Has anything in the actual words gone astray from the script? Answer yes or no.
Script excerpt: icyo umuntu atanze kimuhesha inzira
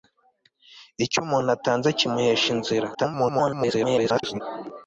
yes